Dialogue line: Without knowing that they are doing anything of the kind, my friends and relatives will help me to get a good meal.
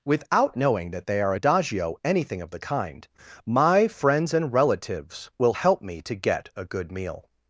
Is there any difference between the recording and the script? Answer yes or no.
yes